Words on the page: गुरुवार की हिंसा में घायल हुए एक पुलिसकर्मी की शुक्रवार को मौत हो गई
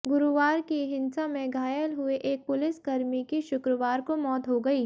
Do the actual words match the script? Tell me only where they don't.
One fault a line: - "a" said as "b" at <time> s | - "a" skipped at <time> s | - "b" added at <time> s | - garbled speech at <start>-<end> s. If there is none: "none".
none